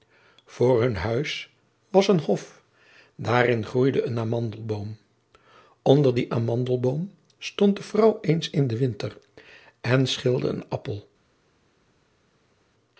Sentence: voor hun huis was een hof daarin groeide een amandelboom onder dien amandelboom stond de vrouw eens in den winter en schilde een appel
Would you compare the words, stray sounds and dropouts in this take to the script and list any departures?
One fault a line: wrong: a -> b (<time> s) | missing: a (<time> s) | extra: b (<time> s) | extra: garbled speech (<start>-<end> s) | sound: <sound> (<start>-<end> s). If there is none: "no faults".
no faults